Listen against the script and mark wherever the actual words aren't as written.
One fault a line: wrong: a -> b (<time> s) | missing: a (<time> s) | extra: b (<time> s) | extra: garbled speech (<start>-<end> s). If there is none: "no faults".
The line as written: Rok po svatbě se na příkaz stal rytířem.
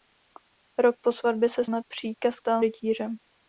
no faults